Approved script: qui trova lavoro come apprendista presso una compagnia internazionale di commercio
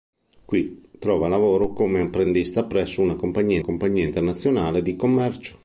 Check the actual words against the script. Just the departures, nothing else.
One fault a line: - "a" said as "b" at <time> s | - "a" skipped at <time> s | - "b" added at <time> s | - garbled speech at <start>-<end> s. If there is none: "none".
- "compagnia" added at 3.6 s